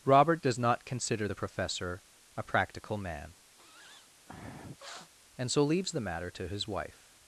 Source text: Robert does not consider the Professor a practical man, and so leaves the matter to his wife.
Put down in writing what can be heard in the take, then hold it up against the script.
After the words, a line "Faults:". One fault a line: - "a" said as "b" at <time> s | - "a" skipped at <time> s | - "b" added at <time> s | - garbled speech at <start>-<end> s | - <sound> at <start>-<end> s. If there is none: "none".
Robert does not consider the Professor a practical man, and so leaves the matter to his wife.
Faults:
- sniff at 3.6-5.1 s